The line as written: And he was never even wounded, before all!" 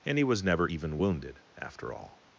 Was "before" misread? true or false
true